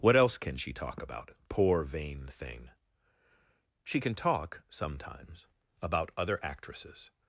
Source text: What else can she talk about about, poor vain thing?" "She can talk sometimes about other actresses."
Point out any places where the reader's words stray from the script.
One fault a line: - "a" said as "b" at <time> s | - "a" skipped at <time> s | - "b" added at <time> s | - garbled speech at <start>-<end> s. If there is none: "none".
- "about" skipped at 1.3 s